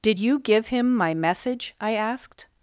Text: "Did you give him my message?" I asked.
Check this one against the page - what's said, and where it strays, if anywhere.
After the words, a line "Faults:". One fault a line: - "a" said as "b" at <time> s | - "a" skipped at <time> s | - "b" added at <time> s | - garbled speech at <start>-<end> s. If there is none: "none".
"Did you give him my message?" I asked.
Faults:
none